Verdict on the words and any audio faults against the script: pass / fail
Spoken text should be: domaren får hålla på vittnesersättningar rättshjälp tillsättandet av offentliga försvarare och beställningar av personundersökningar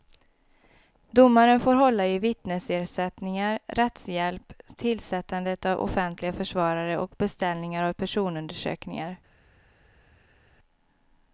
fail